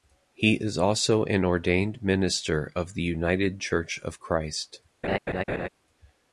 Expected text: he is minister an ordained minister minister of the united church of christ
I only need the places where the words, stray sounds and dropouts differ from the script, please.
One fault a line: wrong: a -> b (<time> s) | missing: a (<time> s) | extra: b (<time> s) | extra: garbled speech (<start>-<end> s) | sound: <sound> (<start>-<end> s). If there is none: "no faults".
wrong: minister -> also (0.8 s)
missing: minister (2.7 s)
sound: laugh (5.0-5.7 s)